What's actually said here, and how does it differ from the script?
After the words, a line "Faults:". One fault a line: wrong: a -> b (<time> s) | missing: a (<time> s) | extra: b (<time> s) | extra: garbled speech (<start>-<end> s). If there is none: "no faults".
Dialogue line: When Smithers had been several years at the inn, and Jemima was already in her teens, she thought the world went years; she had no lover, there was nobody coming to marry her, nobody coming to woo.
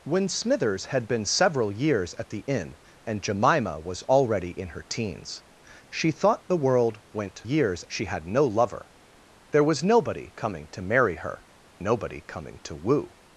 When Smithers had been several years at the inn, and Jemima was already in her teens, she thought the world went years; she had no lover, there was nobody coming to marry her, nobody coming to woo.
Faults:
no faults